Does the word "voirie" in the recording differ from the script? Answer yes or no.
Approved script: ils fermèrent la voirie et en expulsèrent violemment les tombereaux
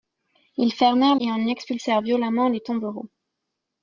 yes